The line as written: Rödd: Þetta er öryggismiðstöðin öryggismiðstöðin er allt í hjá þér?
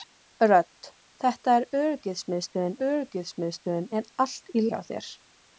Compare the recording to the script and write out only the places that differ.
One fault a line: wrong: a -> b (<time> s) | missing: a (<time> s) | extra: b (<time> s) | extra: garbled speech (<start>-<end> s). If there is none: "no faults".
no faults